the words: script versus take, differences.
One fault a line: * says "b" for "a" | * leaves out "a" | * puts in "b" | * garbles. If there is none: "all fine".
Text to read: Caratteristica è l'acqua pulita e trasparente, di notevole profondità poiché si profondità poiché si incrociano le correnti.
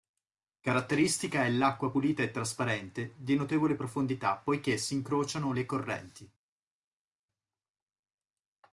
* leaves out "profondità poiché si"